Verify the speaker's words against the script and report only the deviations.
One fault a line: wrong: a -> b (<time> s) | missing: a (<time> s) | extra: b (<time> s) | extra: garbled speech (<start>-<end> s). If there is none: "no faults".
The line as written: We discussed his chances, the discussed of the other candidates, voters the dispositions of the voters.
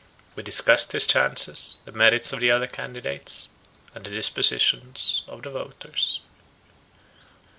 wrong: discussed -> merits (1.9 s)
wrong: voters -> and (3.9 s)